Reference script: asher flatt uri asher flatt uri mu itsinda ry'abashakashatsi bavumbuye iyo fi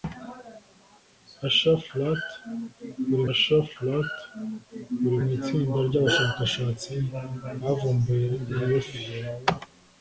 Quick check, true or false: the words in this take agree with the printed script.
true